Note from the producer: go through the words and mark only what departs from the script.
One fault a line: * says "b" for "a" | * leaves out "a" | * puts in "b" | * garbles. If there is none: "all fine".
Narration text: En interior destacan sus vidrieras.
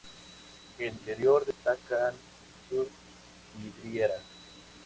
all fine